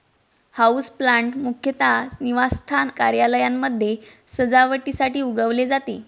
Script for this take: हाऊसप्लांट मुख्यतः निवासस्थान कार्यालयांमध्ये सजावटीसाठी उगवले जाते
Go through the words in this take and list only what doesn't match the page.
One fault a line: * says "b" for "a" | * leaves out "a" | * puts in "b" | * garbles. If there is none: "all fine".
all fine